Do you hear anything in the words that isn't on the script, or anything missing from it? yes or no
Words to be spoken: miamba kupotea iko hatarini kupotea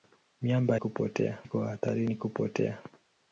no